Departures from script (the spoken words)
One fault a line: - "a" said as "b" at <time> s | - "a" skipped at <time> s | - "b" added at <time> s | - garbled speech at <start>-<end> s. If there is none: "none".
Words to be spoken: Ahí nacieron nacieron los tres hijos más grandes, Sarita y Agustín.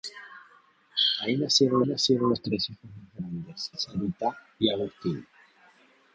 none